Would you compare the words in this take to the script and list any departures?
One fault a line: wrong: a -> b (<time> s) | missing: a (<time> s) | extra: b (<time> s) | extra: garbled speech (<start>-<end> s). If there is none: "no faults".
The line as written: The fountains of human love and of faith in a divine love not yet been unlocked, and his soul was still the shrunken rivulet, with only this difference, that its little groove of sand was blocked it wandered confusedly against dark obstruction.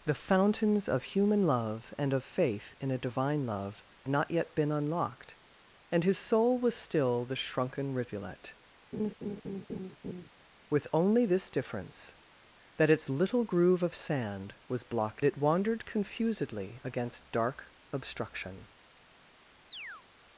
no faults